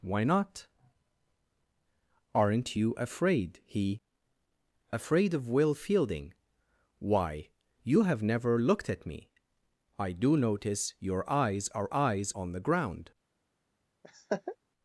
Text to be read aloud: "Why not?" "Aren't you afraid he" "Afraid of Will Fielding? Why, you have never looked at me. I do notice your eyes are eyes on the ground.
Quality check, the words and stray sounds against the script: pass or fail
fail